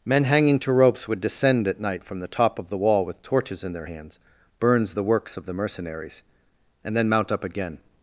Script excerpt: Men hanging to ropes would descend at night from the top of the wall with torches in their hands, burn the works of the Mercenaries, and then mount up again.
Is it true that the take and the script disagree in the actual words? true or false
true